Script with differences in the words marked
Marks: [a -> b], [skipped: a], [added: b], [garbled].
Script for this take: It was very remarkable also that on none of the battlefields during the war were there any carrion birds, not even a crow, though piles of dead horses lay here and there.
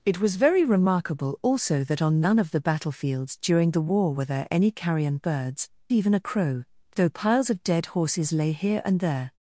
It was very remarkable also that on none of the battlefields during the war were there any carrion birds, [skipped: not] even a crow, though piles of dead horses lay here and there.